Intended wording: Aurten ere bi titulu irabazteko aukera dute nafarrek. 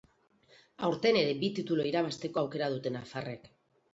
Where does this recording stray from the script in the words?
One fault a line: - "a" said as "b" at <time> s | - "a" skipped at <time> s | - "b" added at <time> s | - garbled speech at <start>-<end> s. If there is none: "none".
none